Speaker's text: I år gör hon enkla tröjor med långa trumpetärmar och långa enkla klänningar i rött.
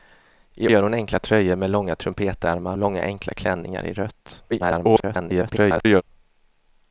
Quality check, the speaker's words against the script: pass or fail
fail